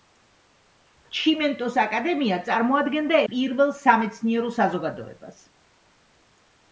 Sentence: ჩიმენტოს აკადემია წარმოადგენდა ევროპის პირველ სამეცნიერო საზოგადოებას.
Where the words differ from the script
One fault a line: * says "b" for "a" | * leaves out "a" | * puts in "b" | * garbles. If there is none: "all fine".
* leaves out "ევროპის"